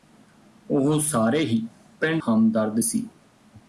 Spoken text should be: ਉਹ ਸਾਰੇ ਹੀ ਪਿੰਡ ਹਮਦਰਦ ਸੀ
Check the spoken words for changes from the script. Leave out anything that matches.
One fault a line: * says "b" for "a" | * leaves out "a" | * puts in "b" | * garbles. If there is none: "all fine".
all fine